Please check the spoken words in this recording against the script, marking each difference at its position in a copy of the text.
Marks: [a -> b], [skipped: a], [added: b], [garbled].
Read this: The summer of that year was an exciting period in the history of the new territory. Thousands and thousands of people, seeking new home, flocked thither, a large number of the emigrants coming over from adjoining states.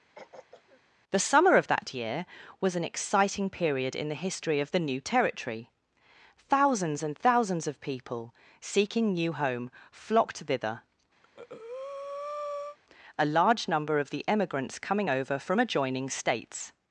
The summer of that year was an exciting period in the history of the new territory. Thousands and thousands of people, seeking new home, flocked thither, a large number of the emigrants coming over from adjoining states.